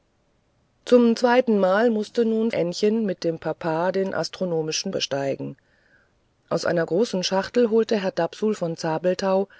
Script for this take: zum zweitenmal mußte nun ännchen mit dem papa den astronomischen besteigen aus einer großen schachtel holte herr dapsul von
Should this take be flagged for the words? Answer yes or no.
no